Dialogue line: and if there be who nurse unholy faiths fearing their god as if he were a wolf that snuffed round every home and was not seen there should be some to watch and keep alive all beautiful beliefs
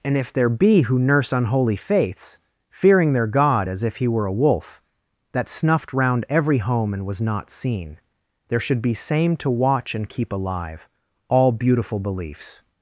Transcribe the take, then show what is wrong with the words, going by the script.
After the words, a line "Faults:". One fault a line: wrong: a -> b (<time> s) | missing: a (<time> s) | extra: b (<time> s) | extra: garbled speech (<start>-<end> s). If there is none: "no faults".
and if there be who nurse unholy faiths fearing their god as if he were a wolf that snuffed round every home and was not seen there should be same to watch and keep alive all beautiful beliefs
Faults:
wrong: some -> same (8.9 s)